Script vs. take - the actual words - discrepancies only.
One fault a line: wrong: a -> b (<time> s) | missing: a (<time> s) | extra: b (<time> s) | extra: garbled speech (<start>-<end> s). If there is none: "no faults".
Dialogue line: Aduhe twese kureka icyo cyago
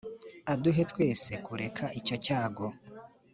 no faults